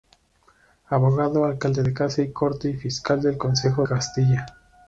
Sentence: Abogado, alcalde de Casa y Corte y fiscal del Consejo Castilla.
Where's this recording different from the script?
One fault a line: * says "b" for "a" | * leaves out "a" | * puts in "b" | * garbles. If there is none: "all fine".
all fine